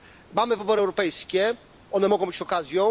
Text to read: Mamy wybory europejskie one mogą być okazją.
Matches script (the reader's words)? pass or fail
pass